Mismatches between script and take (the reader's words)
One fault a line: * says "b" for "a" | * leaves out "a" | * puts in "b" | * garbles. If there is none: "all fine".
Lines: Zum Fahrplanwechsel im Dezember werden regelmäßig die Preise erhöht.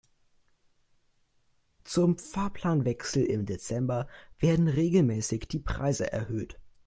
all fine